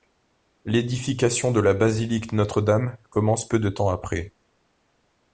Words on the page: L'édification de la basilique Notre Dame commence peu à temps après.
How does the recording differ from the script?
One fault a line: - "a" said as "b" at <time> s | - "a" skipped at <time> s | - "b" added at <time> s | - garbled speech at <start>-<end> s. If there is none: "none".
- "à" said as "de" at 3.6 s